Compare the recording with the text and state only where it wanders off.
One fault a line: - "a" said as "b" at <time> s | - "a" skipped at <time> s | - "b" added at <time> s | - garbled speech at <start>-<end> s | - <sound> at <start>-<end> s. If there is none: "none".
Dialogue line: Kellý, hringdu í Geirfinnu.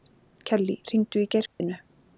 - dropout at 1.5-1.6 s